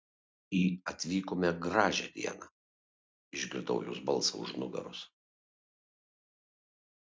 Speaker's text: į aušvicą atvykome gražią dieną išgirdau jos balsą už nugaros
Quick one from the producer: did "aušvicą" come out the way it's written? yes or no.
no